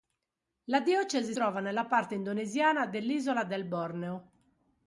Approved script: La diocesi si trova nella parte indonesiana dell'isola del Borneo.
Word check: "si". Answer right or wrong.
wrong